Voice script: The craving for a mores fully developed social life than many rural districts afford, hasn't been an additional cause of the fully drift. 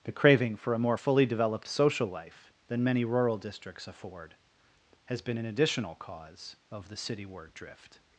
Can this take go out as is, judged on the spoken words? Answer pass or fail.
fail